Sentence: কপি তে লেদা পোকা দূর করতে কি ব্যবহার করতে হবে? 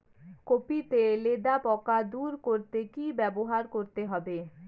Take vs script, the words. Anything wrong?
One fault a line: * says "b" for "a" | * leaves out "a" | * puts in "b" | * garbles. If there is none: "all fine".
all fine